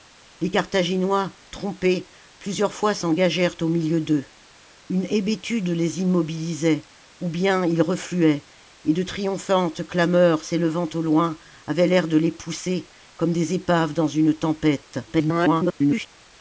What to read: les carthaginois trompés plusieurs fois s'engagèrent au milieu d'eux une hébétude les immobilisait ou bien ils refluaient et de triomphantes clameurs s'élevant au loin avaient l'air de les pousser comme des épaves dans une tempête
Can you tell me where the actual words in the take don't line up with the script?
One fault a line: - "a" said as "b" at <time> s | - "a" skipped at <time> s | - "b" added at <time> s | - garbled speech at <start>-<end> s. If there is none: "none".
- garbled speech at 15.1-16.1 s